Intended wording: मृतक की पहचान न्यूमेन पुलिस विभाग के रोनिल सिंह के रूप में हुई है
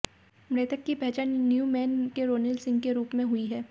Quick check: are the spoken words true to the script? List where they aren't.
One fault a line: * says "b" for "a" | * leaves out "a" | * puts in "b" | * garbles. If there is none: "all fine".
* leaves out "पुलिस विभाग"